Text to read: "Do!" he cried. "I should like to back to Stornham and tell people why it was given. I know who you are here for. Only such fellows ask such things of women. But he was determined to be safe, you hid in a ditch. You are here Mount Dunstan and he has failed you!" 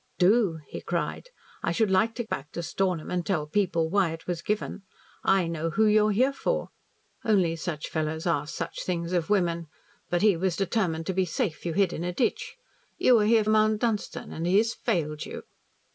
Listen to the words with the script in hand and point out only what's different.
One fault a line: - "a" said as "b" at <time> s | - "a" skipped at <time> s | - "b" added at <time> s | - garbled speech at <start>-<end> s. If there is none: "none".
none